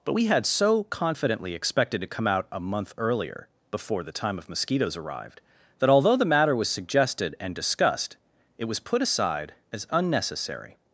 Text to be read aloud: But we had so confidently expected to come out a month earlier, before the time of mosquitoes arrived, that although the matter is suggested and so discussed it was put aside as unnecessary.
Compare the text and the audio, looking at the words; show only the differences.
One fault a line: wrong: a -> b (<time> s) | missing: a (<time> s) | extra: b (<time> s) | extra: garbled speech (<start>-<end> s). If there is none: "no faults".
wrong: is -> was (6.5 s)
missing: so (7.5 s)